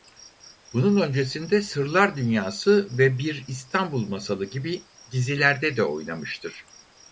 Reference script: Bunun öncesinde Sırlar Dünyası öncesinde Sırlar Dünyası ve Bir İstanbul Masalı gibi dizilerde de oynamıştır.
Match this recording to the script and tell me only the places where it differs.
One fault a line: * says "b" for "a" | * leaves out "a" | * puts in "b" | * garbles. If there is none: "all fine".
* leaves out "öncesinde Sırlar Dünyası"